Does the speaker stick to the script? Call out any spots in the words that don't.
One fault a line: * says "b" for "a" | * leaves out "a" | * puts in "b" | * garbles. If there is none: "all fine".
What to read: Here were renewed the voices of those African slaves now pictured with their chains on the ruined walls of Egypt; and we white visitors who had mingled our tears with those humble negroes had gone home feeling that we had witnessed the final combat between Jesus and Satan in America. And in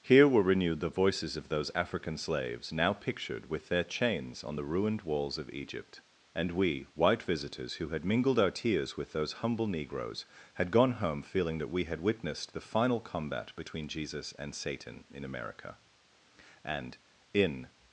all fine